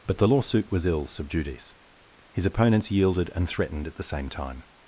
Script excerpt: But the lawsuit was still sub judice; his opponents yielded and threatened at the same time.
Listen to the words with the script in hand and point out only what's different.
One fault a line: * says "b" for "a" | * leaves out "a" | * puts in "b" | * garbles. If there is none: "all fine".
* says "ill" for "still"